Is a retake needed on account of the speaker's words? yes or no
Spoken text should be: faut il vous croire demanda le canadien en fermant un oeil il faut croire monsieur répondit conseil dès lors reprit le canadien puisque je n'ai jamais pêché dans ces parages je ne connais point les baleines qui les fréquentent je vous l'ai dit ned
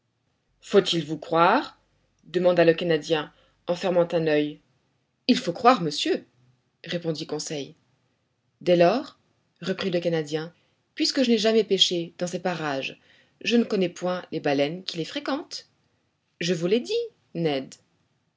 no